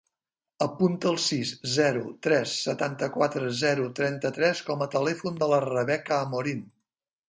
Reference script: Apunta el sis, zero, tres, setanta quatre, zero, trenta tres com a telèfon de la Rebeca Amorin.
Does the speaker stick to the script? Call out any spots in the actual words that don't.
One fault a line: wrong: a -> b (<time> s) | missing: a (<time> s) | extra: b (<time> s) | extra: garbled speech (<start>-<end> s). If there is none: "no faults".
no faults